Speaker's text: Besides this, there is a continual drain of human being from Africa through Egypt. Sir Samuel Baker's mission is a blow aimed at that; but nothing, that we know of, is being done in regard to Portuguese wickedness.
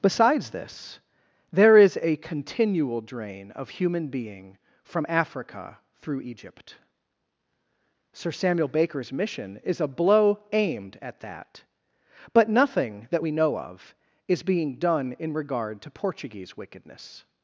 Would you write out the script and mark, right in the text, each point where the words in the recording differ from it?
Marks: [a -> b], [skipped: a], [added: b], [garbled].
Besides this, there is a continual drain of human being from Africa through Egypt. Sir Samuel Baker's mission is a blow aimed at that; but nothing, that we know of, is being done in regard to Portuguese wickedness.